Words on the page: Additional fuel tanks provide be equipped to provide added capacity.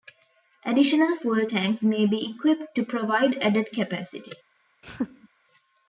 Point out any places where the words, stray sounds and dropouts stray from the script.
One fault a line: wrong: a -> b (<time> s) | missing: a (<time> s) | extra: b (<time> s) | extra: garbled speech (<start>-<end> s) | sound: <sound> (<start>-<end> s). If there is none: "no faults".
wrong: provide -> may (1.8 s)
sound: laugh (4.8-5.3 s)